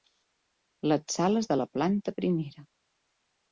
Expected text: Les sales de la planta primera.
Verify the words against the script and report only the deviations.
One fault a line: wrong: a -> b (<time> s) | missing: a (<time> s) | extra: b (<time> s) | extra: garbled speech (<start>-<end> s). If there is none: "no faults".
no faults